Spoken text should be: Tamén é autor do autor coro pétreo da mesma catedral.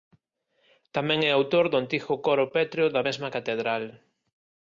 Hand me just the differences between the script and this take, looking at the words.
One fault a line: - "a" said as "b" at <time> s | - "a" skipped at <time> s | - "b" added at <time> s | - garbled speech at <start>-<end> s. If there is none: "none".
- "autor" said as "antigo" at 1.8 s